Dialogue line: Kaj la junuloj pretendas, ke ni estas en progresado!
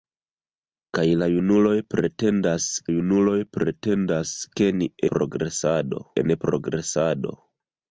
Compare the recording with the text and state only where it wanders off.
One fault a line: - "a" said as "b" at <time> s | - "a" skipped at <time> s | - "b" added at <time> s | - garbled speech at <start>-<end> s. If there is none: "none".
- "junuloj pretendas" added at 2.9 s
- "estas" said as "progresado" at 5.1 s